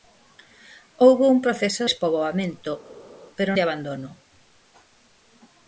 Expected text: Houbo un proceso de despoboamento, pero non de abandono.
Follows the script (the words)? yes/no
no